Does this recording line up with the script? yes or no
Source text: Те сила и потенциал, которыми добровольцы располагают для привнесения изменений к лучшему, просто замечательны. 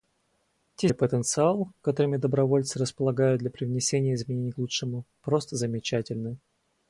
no